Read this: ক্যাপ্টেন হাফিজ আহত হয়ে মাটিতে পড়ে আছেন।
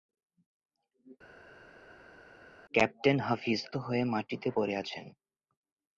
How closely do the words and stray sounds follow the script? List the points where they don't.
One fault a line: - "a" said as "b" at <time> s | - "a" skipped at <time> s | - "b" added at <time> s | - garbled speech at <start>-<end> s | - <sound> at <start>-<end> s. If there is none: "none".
- "আহত" skipped at 3.6 s